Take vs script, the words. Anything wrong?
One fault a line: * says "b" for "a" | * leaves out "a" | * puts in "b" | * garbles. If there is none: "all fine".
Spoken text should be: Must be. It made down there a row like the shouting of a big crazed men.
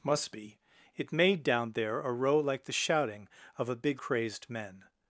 all fine